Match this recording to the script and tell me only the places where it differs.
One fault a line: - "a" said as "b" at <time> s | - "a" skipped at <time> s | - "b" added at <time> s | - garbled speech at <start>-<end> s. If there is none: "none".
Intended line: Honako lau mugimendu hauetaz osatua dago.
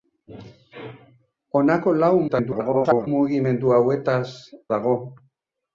- garbled speech at 2.3-3.1 s
- "osatua" skipped at 4.2 s